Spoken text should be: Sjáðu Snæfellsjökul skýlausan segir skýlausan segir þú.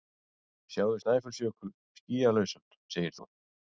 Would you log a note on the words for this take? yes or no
yes